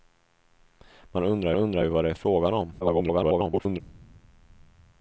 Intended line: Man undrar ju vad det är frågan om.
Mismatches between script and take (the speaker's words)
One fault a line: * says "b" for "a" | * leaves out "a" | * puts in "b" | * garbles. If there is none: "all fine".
* puts in "undrar"
* garbles